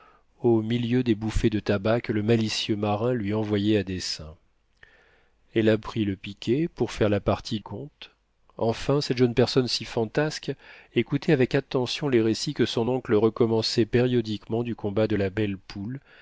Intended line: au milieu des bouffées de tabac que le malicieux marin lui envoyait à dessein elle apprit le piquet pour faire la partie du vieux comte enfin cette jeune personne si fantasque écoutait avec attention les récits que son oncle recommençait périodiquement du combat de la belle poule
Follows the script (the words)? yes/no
no